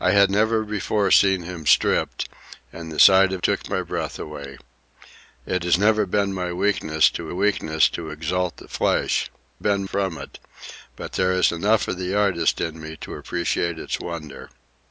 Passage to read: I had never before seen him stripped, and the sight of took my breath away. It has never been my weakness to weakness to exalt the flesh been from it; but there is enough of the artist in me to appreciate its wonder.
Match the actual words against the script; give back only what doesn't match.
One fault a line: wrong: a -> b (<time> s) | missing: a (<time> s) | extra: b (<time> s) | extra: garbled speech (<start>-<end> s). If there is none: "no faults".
no faults